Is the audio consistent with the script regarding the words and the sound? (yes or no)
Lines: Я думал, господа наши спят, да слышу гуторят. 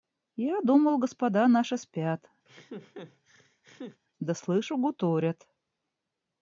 no